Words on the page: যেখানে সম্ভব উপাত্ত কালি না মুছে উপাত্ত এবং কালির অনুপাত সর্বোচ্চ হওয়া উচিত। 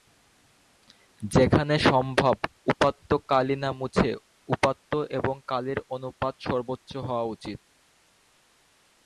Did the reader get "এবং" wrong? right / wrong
right